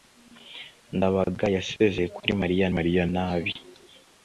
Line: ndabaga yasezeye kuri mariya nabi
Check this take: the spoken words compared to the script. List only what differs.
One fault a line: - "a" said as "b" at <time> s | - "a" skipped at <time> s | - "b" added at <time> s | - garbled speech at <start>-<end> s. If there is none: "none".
- "mariya" added at 2.8 s